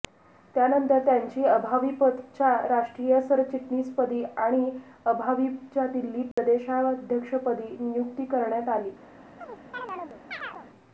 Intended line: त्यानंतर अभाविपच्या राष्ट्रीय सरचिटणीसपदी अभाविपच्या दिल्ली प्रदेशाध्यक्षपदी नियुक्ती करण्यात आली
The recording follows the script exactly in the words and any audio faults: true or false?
false